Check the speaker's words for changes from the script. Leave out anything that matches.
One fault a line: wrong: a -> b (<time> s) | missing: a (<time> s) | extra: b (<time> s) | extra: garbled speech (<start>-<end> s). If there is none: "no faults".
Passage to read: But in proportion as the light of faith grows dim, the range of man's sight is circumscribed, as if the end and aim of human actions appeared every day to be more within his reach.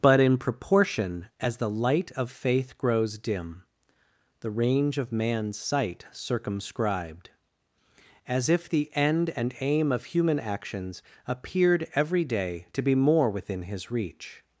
missing: is (6.0 s)